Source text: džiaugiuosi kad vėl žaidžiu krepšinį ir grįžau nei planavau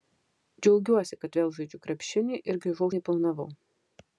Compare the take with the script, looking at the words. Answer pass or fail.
pass